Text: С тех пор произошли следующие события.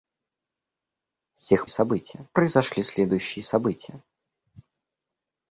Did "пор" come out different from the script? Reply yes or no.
yes